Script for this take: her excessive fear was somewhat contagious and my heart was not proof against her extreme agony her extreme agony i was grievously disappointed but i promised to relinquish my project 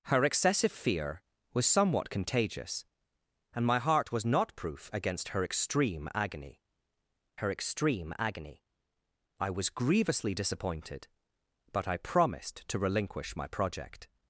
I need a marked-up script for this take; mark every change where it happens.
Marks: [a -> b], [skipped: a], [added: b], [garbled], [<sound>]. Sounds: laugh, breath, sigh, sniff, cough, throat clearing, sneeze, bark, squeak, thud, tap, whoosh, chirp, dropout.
her excessive fear was somewhat contagious and my heart was not proof against her extreme agony her extreme agony i was grievously disappointed but i promised to relinquish my project